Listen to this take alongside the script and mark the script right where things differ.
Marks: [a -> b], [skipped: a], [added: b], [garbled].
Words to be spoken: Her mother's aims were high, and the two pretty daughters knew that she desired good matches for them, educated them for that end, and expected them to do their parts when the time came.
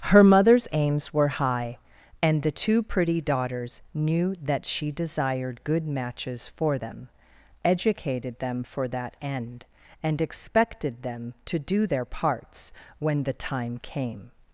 Her mother's aims were high, and the two pretty daughters knew that she desired good matches for them, educated them for that end, and expected them to do their parts when the time came.